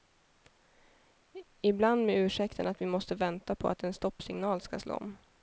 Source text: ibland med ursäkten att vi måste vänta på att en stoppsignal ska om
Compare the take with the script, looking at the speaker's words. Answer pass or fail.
fail